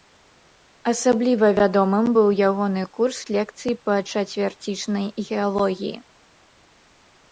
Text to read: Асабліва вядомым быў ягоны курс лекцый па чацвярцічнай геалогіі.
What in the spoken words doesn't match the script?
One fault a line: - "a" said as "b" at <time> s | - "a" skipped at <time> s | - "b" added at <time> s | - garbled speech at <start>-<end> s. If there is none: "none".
none